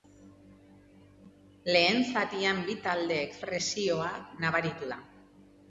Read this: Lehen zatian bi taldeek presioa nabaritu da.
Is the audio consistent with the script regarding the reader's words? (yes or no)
yes